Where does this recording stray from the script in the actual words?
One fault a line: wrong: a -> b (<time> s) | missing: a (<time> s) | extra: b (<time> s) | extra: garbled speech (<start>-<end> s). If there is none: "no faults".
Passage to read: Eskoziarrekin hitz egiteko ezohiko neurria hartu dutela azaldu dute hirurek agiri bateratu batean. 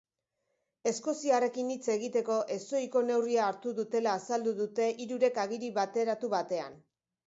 no faults